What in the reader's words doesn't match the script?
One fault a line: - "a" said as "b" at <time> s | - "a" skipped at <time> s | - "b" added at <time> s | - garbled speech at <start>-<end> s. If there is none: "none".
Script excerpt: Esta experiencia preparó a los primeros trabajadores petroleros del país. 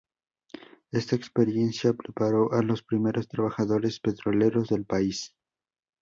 none